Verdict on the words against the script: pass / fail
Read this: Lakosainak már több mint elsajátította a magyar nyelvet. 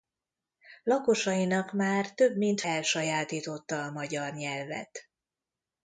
pass